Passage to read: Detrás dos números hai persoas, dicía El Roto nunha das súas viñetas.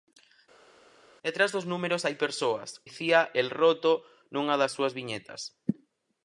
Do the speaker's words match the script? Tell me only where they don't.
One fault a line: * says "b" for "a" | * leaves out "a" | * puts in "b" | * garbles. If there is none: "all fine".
all fine